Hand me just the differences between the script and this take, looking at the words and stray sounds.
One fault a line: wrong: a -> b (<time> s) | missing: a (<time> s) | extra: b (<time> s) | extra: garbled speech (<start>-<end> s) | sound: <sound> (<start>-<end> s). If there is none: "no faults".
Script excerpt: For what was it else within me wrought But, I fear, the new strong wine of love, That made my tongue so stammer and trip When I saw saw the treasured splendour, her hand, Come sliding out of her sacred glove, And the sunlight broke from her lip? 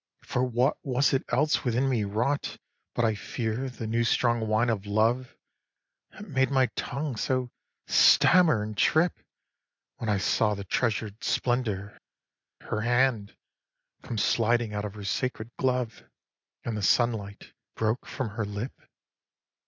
missing: saw (10.6 s)